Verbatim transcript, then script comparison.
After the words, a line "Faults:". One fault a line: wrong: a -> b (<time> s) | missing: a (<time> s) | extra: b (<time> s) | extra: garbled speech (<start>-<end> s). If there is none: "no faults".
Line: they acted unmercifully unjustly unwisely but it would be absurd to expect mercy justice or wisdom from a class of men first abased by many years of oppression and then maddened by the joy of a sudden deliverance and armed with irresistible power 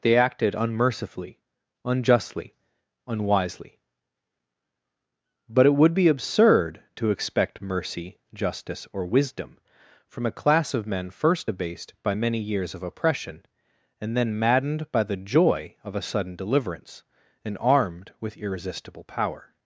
they acted unmercifully unjustly unwisely but it would be absurd to expect mercy justice or wisdom from a class of men first abased by many years of oppression and then maddened by the joy of a sudden deliverance and armed with irresistible power
Faults:
no faults